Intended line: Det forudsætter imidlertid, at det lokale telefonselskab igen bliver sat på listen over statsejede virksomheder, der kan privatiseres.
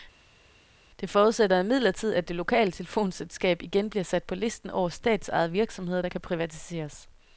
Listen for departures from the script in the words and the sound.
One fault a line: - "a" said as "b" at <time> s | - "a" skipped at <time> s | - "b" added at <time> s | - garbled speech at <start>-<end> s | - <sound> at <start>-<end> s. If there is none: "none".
none